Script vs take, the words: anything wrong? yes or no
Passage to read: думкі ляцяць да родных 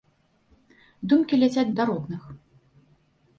no